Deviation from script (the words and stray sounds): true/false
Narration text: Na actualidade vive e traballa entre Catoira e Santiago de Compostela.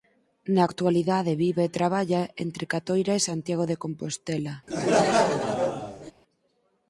true